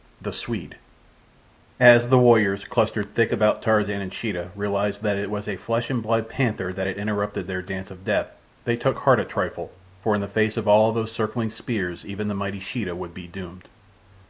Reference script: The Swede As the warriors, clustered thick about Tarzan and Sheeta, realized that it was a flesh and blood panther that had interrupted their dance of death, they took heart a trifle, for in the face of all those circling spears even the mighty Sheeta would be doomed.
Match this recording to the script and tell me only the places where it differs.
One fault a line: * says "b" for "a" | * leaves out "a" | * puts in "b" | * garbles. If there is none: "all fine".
all fine